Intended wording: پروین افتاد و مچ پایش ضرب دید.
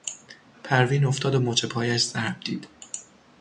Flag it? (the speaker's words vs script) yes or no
no